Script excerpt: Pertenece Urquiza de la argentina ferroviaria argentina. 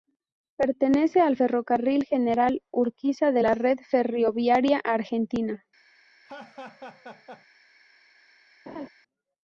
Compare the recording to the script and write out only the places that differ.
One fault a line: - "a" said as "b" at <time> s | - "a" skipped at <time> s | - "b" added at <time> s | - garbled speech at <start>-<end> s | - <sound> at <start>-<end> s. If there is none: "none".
- "al Ferrocarril General" added at 1.2 s
- "argentina" said as "red" at 3.5 s
- laugh at 6.2-7.5 s
- laugh at 8.7-8.9 s